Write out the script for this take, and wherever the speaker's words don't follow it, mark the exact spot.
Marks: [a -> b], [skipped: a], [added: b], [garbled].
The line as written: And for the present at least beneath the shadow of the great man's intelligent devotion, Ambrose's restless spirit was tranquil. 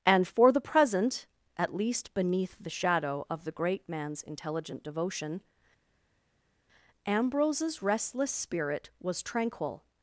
And for the present at least beneath the shadow of the great man's intelligent devotion, Ambrose's restless spirit was tranquil.